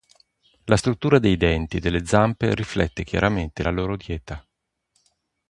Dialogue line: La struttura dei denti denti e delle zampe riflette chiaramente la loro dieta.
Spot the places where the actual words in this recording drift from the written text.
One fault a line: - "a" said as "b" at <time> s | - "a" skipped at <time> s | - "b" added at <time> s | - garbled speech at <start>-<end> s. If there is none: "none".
- "denti" skipped at 1.8 s